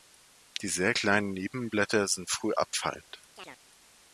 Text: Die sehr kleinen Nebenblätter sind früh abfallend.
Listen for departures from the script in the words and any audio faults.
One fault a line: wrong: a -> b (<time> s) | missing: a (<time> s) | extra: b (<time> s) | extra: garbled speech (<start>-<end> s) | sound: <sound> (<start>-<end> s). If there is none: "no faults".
sound: chirp (3.4-3.6 s)